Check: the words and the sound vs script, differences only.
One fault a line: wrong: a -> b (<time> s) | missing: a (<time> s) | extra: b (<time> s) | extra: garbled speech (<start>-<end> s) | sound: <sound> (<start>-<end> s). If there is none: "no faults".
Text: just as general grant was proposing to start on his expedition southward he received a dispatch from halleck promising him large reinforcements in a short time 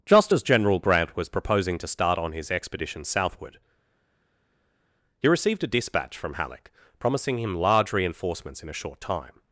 no faults